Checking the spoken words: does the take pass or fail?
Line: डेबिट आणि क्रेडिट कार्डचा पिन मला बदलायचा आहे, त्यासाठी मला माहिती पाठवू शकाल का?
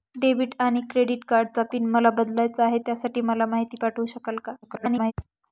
fail